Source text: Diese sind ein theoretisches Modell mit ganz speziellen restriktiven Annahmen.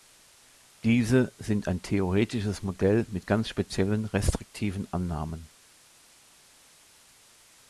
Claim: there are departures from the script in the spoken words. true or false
false